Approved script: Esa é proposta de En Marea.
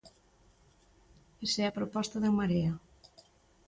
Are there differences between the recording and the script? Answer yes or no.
yes